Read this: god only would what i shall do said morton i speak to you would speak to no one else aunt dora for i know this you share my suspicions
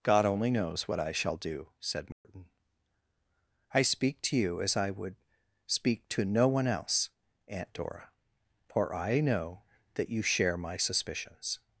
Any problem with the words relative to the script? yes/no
yes